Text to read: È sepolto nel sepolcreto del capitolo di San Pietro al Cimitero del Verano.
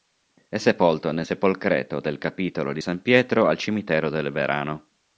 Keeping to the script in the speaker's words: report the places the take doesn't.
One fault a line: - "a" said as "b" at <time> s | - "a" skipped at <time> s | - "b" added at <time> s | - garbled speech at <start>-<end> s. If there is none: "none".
none